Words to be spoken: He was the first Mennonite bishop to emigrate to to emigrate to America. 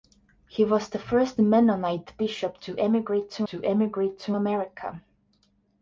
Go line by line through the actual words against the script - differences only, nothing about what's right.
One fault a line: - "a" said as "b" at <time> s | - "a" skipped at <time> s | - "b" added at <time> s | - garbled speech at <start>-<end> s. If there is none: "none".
none